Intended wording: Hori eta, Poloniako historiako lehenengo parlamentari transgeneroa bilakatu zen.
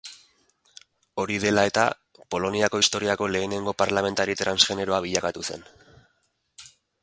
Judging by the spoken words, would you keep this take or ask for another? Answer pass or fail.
fail